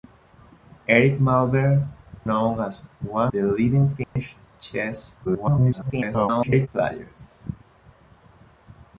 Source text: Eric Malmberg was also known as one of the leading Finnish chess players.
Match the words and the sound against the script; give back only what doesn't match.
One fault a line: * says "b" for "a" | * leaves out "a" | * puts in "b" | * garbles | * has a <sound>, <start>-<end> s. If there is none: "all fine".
* leaves out "was also"
* leaves out "of"
* has a dropout, 4.0-4.2 s
* garbles